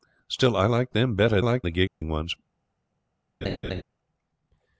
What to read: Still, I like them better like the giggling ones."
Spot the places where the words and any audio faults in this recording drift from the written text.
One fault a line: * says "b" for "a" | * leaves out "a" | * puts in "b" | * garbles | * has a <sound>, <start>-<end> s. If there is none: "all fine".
* has a dropout, 1.9-2.0 s
* has a laugh, 3.4-3.8 s